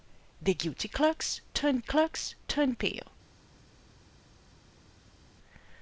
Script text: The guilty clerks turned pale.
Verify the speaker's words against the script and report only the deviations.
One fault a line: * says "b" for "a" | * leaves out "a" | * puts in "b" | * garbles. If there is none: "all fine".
* puts in "clerks turned"